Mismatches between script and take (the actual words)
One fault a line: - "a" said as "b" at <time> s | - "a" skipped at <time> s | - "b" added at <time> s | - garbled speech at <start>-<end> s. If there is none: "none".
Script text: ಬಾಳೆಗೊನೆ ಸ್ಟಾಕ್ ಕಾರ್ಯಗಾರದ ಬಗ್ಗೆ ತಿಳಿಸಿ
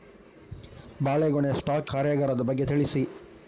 none